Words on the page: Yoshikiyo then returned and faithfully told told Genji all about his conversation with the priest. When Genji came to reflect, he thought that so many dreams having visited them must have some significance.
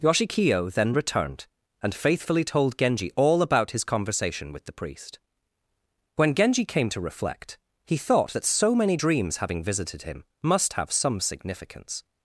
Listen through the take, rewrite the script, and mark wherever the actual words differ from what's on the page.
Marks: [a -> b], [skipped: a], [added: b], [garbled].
Yoshikiyo then returned and faithfully told [skipped: told] Genji all about his conversation with the priest. When Genji came to reflect, he thought that so many dreams having visited [them -> him] must have some significance.